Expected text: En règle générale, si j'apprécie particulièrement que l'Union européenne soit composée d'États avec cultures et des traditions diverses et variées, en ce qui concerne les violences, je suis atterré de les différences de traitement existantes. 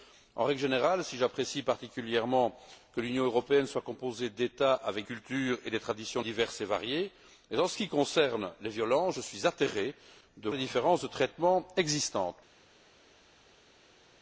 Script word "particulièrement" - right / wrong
right